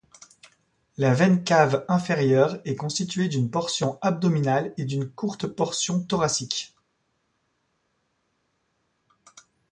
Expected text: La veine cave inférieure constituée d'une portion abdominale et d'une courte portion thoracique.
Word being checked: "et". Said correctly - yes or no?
yes